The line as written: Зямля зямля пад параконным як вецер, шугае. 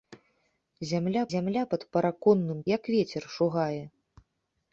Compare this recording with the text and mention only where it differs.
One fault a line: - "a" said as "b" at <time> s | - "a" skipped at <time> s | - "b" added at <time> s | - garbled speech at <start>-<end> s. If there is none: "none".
none